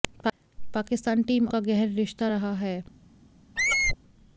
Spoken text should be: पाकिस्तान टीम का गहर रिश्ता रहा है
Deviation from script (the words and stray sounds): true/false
true